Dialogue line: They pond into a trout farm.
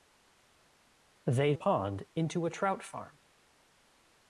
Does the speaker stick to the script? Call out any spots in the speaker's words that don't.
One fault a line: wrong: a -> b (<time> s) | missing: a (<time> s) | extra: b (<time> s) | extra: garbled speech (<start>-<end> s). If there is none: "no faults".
no faults